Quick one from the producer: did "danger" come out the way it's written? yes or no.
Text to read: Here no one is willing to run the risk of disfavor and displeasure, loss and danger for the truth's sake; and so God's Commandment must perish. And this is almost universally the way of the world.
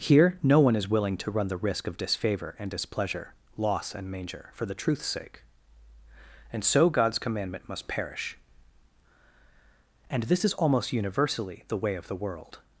no